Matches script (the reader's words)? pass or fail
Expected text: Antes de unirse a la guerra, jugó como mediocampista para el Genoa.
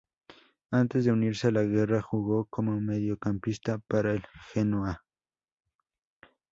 pass